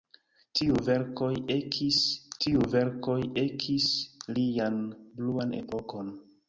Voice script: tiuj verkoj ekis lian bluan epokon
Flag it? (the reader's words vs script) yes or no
yes